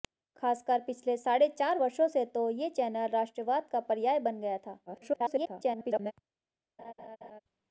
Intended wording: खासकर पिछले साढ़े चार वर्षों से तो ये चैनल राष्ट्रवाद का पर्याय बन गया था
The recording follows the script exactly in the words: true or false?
false